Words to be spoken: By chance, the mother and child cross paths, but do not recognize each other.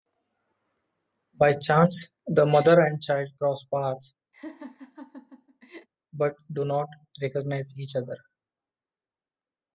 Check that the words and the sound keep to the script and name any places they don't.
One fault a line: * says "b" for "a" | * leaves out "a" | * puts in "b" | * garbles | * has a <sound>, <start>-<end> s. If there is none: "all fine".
* has a laugh, 4.3-5.9 s